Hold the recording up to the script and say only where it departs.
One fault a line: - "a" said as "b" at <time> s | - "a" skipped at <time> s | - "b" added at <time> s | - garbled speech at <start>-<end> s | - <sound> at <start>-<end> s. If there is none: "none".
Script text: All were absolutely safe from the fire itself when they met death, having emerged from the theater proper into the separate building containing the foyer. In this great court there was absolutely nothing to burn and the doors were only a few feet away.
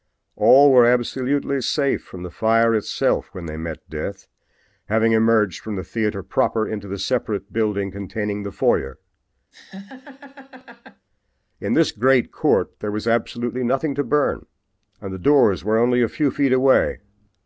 - laugh at 9.5-11.1 s